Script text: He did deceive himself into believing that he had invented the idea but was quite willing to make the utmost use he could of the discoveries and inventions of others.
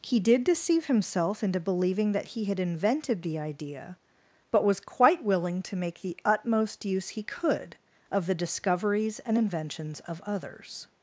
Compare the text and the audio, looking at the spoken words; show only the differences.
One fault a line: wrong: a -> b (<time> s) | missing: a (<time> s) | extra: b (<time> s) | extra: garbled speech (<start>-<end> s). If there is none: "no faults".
no faults